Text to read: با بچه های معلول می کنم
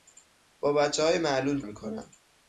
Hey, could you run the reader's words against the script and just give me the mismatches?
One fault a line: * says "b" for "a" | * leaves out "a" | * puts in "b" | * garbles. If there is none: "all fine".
all fine